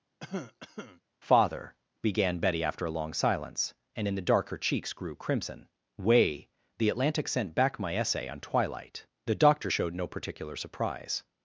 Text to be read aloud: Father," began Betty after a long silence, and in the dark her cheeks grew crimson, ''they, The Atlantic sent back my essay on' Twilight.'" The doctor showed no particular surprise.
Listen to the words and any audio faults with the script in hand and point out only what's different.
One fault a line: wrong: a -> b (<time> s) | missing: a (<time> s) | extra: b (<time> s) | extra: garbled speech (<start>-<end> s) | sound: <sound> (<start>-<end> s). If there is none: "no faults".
sound: cough (0.2-1.0 s)
wrong: they -> way (6.0 s)